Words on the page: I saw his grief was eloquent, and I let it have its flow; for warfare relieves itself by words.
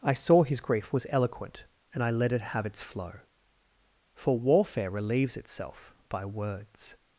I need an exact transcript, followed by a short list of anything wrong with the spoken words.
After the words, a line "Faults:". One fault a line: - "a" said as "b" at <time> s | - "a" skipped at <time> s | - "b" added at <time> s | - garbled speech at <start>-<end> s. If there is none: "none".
I saw his grief was eloquent, and I let it have its flow; for warfare relieves itself by words.
Faults:
none